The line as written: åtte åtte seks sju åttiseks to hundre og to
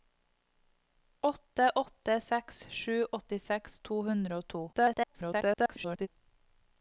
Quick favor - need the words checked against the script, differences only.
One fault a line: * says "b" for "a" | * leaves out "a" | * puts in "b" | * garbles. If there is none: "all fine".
* garbles